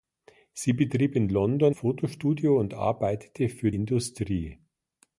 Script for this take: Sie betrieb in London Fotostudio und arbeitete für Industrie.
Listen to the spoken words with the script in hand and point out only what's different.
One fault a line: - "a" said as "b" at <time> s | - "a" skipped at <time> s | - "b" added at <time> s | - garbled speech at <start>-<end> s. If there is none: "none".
none